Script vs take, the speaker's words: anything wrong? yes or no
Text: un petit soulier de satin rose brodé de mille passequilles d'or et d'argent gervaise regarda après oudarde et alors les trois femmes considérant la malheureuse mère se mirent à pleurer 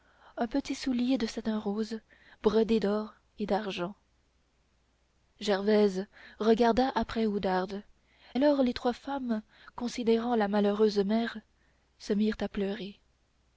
yes